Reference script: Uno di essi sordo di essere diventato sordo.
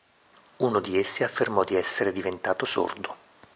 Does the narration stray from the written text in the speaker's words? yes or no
yes